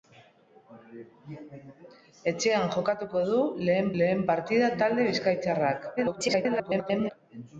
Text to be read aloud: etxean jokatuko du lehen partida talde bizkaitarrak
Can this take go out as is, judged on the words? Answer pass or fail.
fail